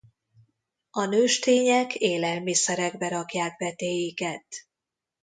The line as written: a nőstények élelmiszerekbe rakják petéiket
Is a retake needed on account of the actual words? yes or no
no